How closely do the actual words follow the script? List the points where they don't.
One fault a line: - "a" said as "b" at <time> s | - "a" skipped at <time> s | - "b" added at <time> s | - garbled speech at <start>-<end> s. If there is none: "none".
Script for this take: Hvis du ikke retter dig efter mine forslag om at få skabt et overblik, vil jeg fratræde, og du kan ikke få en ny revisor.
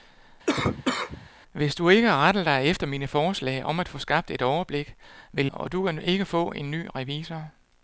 - "jeg fratræde" skipped at 5.5 s